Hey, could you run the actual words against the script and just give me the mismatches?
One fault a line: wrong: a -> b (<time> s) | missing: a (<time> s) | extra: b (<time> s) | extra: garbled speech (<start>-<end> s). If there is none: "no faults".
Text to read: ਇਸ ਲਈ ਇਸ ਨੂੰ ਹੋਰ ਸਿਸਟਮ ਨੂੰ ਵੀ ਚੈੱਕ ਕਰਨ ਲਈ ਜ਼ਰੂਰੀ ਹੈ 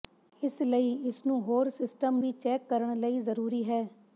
missing: ਨੂੰ (2.2 s)